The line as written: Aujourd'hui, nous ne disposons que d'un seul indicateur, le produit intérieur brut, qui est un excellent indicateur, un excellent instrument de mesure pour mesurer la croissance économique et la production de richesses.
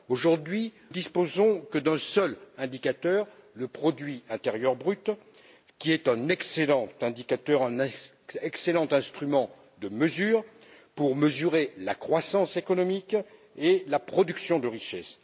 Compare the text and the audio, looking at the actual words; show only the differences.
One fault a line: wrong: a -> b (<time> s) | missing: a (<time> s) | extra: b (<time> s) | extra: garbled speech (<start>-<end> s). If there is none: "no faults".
missing: nous ne (0.7 s)